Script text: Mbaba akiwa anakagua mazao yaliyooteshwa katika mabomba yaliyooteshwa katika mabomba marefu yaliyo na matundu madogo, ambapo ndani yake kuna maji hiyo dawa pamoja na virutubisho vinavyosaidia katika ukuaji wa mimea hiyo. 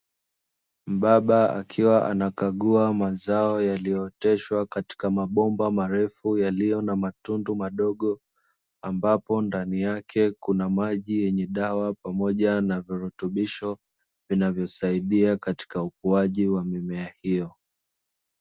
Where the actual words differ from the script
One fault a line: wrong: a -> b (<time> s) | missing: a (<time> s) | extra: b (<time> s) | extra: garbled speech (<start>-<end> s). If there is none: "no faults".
missing: yaliyooteshwa katika mabomba (5.7 s)
wrong: hiyo -> yenye (11.2 s)